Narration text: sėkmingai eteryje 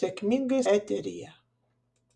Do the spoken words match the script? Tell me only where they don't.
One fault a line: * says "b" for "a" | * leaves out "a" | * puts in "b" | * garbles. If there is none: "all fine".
all fine